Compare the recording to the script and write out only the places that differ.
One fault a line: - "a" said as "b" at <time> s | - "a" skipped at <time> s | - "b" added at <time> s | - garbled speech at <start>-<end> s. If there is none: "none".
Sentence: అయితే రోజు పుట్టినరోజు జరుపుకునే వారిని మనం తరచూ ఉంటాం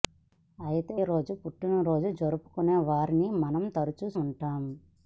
none